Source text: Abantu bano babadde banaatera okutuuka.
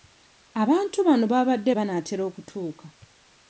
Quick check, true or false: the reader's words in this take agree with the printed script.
true